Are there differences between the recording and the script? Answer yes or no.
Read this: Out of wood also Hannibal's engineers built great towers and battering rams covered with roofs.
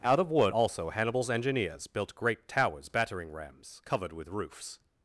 yes